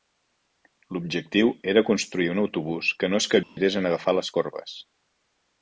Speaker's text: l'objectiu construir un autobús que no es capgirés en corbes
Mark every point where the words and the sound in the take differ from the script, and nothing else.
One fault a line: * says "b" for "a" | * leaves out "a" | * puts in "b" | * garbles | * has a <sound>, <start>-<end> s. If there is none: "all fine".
* puts in "era"
* has a dropout, 3.4-3.6 s
* puts in "agafar les"